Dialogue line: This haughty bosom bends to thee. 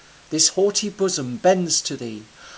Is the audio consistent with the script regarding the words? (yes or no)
yes